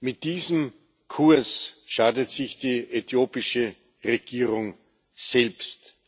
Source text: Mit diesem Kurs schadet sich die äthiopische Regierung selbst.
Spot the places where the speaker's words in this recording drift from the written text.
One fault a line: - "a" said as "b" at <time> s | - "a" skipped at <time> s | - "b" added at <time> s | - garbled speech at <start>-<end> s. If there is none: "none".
none